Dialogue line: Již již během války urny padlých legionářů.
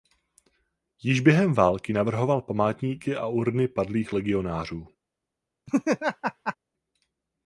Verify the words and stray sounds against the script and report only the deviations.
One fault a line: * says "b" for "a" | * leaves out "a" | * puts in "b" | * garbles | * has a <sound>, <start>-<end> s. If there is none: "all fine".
* leaves out "již"
* puts in "navrhoval památníky a"
* has a laugh, 5.7-6.6 s